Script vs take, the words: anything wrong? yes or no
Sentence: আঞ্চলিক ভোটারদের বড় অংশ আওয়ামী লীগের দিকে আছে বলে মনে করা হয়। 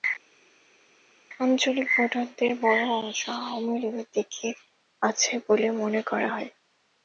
no